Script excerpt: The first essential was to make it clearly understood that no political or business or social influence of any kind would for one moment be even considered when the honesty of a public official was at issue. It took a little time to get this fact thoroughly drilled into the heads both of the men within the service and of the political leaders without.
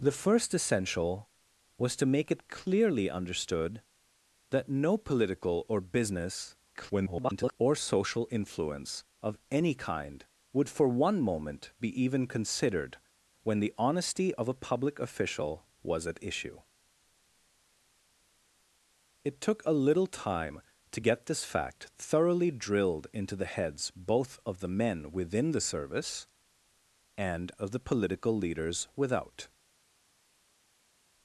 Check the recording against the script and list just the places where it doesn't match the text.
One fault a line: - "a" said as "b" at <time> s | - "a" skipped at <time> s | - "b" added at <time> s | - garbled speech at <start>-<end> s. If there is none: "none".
- garbled speech at 6.7-7.6 s